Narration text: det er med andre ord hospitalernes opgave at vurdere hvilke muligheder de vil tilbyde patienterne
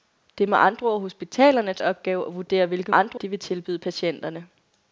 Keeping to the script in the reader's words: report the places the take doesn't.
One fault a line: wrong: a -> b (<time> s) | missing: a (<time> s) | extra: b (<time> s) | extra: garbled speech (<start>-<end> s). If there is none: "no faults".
wrong: muligheder -> andre (2.9 s)